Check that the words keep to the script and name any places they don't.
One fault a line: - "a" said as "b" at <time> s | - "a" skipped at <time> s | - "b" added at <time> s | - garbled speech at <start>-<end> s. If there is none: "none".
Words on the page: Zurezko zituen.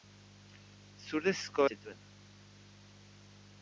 none